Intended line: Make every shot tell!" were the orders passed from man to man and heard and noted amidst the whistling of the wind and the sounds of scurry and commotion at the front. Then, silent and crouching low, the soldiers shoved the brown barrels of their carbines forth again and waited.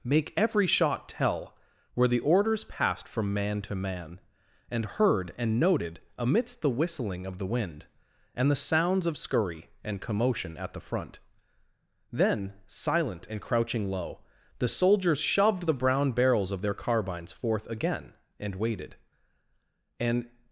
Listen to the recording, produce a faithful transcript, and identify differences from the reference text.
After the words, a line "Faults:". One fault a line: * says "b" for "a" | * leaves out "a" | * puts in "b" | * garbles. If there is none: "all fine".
Make every shot tell!" were the orders passed from man to man and heard and noted amidst the whistling of the wind and the sounds of scurry and commotion at the front. Then, silent and crouching low, the soldiers shoved the brown barrels of their carbines forth again and waited. And
Faults:
* puts in "And"